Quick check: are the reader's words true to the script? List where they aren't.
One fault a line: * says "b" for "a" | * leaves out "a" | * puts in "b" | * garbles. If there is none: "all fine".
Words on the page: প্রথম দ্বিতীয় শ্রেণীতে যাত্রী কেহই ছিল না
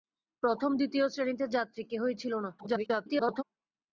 * garbles